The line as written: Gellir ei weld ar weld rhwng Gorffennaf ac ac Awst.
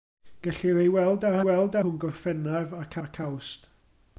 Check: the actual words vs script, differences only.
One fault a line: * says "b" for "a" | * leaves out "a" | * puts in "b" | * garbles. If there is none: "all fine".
all fine